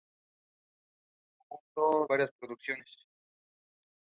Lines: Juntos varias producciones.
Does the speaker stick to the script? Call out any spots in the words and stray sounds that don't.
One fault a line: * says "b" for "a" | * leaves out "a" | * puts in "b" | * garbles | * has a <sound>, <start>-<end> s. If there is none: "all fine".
all fine